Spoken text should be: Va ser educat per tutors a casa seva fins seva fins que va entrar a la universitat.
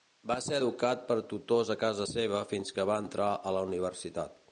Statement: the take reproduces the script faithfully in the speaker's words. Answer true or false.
false